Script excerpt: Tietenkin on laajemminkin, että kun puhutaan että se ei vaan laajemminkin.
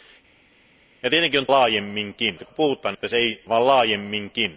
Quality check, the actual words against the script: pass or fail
pass